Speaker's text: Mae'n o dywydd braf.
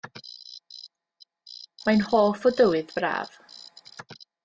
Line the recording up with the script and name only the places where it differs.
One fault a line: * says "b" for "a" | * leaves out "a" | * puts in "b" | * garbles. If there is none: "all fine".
* puts in "hoff"